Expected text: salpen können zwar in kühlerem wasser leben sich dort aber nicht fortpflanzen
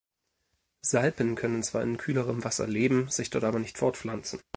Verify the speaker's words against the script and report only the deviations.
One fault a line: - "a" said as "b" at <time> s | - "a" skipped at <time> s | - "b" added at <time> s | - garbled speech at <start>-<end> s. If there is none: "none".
none